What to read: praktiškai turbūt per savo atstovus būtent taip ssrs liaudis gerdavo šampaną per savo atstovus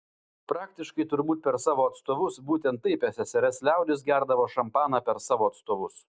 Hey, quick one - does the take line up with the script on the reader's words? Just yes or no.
yes